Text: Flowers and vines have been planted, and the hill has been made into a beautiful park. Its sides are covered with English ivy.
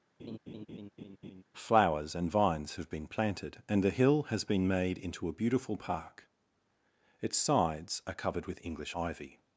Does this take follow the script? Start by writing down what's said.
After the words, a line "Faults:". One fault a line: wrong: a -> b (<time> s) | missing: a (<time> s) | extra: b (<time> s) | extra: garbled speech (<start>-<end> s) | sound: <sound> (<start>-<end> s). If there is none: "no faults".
Flowers and vines have been planted, and the hill has been made into a beautiful park. Its sides are covered with English ivy.
Faults:
sound: laugh (0.2-1.4 s)